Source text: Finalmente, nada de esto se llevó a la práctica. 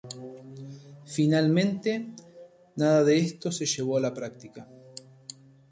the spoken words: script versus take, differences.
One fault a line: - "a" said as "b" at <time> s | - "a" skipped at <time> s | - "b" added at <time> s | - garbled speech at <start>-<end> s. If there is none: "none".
none